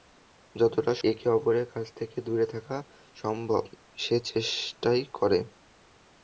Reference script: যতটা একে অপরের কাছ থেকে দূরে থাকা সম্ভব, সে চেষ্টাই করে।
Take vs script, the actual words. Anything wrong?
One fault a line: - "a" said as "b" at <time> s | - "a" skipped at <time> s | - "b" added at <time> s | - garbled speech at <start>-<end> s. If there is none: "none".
none